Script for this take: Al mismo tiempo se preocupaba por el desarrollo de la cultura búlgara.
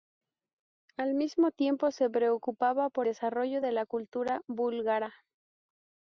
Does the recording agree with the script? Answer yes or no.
no